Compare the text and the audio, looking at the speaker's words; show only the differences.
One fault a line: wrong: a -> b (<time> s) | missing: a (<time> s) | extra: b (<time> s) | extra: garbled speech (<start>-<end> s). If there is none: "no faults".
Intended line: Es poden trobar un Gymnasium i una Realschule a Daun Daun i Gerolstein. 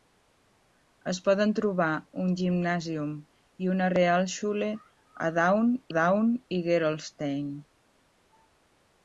no faults